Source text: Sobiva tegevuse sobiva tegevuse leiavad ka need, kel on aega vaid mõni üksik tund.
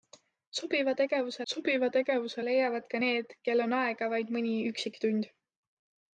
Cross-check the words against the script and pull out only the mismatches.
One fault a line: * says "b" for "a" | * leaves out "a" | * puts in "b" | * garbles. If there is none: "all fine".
all fine